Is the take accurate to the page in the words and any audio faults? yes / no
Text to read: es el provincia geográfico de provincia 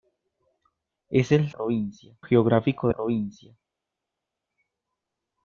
yes